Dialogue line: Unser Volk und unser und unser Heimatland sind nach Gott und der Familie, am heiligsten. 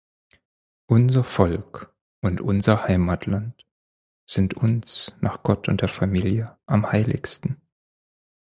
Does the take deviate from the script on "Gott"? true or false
false